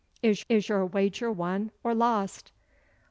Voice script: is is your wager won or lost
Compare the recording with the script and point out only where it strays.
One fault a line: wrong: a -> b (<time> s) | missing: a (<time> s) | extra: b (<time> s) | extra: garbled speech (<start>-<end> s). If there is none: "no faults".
no faults